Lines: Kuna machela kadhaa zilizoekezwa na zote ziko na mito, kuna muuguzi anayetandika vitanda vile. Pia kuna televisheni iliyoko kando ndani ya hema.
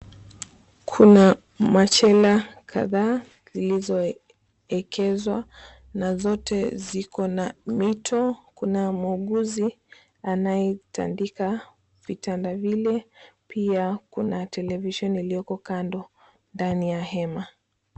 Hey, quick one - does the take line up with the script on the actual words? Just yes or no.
yes